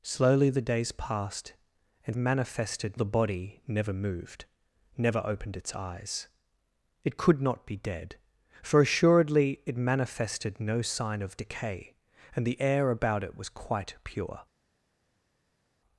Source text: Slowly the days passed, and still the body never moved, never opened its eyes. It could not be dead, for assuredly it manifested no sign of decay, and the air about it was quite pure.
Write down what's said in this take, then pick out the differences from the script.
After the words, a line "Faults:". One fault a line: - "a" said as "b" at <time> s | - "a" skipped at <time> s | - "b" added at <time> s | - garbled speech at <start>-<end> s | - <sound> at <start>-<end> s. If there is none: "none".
Slowly the days passed, and manifested the body never moved, never opened its eyes. It could not be dead, for assuredly it manifested no sign of decay, and the air about it was quite pure.
Faults:
- "still" said as "manifested" at 2.2 s